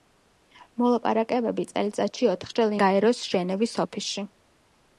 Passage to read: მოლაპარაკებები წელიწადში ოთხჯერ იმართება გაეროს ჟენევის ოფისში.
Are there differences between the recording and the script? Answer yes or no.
yes